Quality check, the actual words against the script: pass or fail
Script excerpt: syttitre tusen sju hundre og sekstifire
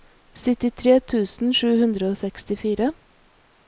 pass